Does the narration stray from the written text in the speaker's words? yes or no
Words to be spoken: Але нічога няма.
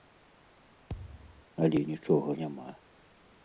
no